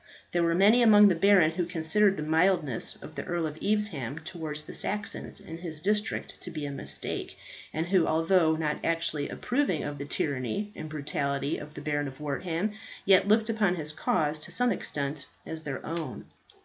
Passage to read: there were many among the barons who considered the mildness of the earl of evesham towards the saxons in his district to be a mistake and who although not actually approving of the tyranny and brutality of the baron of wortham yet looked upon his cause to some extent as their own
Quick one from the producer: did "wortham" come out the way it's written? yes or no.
yes